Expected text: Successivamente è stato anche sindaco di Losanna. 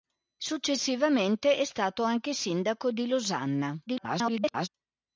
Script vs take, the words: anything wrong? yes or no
yes